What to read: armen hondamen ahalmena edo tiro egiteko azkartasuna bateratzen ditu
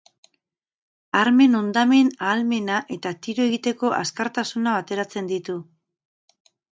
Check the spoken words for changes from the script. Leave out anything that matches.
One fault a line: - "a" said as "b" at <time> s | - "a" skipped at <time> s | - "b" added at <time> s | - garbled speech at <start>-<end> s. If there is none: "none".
- "edo" said as "eta" at 3.0 s